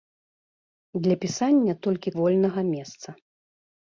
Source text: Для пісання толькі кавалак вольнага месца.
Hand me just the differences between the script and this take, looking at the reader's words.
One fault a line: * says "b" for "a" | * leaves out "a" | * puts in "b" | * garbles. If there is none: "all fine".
* leaves out "кавалак"